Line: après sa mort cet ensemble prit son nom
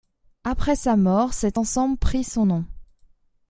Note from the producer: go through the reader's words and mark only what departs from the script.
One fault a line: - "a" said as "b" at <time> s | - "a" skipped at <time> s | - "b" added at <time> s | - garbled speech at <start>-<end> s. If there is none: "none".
none